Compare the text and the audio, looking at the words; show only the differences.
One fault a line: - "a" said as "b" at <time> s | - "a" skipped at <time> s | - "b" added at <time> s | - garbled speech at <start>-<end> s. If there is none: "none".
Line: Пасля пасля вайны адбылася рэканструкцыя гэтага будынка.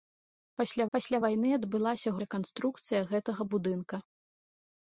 none